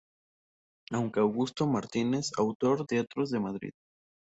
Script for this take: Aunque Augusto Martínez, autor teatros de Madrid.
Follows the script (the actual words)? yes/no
yes